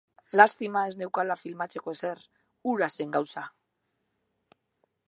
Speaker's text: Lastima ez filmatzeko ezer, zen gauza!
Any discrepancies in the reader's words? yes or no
yes